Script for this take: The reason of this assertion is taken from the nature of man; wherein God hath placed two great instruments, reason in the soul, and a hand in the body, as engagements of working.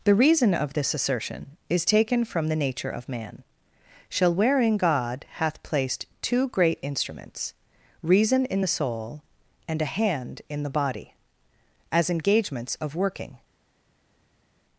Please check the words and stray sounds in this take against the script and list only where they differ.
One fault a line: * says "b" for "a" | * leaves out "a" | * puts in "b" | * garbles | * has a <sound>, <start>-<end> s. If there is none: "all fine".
* puts in "shall"